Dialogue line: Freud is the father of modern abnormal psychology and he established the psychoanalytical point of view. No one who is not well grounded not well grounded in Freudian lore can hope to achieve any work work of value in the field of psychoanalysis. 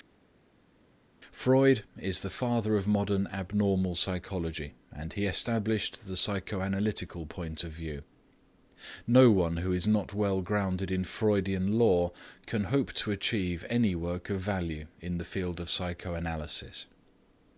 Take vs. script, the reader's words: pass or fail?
fail